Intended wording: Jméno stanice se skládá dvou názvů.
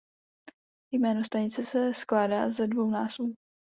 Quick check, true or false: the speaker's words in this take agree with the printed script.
false